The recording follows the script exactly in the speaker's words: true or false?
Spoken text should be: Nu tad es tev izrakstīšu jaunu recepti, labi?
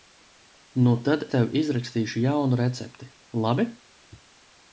false